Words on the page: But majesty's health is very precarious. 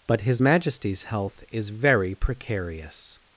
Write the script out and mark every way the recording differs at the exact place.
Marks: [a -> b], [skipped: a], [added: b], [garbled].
But [added: his] majesty's health is very precarious.